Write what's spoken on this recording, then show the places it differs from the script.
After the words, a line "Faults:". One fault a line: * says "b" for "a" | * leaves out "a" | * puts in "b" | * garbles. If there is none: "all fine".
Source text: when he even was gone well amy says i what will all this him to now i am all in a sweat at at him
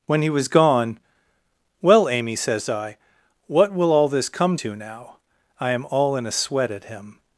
when he was gone well amy says i what will all this come to now i am all in a sweat at him
Faults:
* leaves out "even"
* says "come" for "him"
* leaves out "at"